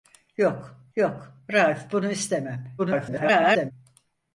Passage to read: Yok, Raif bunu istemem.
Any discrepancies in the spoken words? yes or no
yes